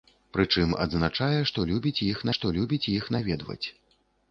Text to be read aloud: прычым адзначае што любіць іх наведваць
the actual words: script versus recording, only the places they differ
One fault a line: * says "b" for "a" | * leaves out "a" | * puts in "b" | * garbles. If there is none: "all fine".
* puts in "што любіць іх"